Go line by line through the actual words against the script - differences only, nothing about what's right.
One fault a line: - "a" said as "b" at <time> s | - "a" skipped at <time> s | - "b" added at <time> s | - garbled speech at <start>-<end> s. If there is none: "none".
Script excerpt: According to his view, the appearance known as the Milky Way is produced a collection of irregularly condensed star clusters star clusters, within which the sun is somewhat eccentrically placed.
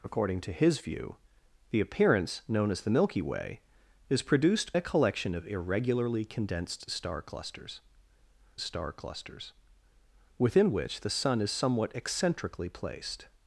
none